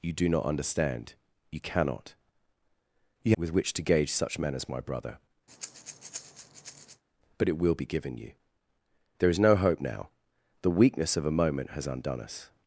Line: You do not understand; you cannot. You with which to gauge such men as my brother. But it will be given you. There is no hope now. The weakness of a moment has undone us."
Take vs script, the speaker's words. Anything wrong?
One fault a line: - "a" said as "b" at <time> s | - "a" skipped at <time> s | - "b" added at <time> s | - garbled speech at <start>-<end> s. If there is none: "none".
none